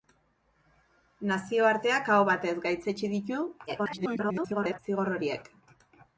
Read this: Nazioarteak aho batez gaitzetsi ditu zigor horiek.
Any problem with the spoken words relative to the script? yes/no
yes